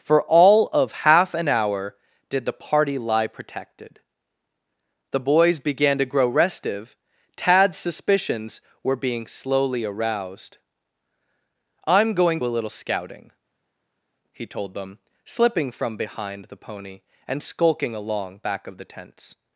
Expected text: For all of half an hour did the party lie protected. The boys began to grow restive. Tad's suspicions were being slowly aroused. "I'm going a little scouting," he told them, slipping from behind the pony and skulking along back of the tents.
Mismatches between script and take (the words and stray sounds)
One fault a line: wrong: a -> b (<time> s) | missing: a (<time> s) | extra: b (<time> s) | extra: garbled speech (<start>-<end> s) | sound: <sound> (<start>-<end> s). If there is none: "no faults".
no faults